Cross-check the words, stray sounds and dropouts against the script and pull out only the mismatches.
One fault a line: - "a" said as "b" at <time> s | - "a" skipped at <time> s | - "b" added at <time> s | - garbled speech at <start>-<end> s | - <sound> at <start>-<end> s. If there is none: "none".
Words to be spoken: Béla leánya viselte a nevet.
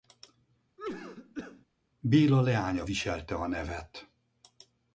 - cough at 0.8-1.7 s